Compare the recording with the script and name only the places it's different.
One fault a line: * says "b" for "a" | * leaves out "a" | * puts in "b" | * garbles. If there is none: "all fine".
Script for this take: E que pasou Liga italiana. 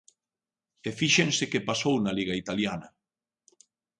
* puts in "fíxense"
* puts in "na"